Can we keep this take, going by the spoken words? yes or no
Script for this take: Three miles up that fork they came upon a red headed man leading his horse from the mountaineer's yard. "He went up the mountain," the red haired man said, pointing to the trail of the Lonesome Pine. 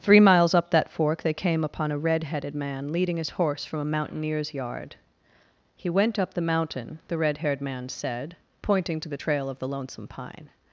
no